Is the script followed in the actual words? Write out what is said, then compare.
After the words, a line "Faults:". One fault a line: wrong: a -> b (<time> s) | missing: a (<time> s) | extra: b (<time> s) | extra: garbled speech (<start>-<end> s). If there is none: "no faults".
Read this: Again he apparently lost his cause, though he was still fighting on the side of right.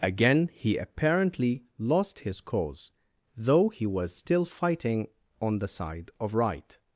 Again he apparently lost his cause, though he was still fighting on the side of right.
Faults:
no faults